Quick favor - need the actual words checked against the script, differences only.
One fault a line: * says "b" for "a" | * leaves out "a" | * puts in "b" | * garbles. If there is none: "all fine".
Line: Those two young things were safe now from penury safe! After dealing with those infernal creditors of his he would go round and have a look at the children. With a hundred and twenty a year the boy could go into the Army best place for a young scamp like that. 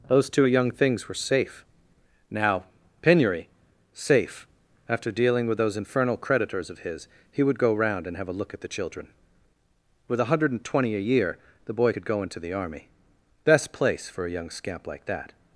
* leaves out "from"